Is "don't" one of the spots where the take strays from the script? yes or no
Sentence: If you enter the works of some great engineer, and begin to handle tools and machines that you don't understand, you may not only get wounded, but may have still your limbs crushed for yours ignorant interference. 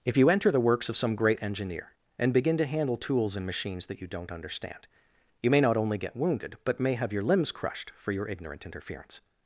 no